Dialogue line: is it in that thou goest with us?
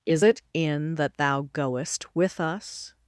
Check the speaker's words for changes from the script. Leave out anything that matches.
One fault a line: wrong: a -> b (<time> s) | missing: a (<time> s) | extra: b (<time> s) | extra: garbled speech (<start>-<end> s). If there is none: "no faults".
no faults